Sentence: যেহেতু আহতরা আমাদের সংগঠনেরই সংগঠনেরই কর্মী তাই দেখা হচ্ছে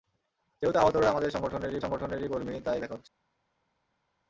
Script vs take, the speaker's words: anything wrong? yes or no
no